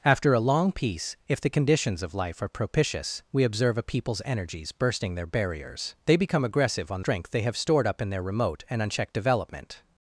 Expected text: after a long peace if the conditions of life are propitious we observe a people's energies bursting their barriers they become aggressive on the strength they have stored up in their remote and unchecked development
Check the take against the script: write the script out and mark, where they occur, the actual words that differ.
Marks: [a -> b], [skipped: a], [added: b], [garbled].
after a long peace if the conditions of life are propitious we observe a people's energies bursting their barriers they become aggressive on [skipped: the] strength they have stored up in their remote and unchecked development